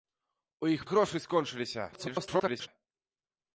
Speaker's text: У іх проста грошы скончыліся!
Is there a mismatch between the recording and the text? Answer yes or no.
yes